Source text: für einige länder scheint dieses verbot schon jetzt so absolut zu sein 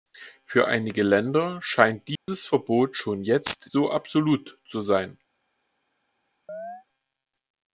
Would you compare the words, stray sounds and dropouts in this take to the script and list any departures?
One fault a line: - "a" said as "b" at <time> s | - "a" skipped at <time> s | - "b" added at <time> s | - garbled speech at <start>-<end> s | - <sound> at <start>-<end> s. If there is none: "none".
- dropout at 2.2-2.3 s
- chirp at 6.5-6.8 s